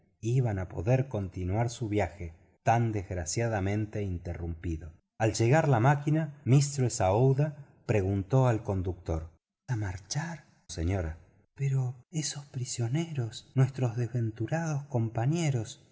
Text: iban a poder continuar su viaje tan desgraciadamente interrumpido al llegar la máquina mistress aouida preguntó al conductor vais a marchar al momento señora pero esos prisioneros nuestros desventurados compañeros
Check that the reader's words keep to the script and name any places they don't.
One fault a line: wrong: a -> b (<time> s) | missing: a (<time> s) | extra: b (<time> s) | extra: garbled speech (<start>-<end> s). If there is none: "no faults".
missing: vais (9.3 s)
missing: al momento (10.7 s)